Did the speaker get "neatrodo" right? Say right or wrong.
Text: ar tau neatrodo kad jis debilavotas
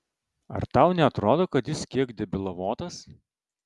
right